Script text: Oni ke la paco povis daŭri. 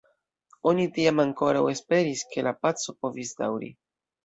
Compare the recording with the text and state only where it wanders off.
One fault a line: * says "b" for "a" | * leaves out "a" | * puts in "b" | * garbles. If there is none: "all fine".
* puts in "tiam ankoraŭ esperis"